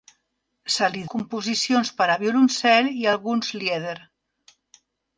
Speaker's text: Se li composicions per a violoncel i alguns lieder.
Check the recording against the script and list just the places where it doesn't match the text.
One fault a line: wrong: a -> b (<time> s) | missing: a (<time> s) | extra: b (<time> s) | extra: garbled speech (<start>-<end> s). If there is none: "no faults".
no faults